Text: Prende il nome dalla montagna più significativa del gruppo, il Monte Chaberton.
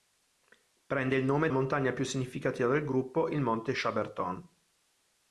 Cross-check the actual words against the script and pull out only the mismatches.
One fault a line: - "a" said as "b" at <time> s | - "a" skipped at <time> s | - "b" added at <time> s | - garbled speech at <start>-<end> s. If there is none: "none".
- "dalla" skipped at 1.5 s